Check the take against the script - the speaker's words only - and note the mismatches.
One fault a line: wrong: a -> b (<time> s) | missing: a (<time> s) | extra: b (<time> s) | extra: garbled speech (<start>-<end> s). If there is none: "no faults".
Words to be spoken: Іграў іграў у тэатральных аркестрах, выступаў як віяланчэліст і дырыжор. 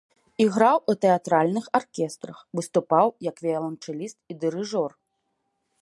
missing: іграў (0.8 s)